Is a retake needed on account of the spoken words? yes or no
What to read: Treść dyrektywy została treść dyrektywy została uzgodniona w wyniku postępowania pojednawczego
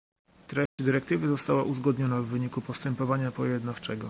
yes